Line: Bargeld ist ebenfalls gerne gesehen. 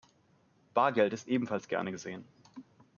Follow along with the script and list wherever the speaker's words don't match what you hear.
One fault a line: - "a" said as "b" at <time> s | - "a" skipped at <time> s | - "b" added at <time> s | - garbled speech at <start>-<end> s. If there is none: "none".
none